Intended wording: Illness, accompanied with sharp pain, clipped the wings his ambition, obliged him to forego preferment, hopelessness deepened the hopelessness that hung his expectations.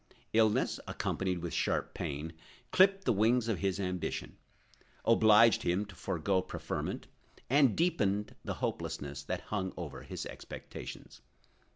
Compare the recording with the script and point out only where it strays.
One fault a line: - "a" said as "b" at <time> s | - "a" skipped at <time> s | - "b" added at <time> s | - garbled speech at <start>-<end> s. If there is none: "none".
- "of" added at 3.5 s
- "hopelessness" said as "and" at 7.5 s
- "over" added at 9.8 s